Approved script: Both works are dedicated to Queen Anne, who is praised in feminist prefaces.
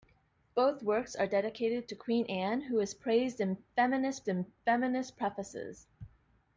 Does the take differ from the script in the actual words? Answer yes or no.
yes